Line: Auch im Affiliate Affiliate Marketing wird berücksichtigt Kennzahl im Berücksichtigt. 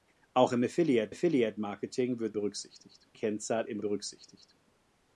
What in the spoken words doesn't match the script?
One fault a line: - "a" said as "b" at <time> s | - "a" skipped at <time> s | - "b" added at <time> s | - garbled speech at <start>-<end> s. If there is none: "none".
none